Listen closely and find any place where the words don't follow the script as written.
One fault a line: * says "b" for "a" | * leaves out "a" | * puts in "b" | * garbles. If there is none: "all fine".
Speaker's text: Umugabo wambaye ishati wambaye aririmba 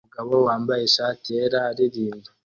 * says "yera" for "wambaye"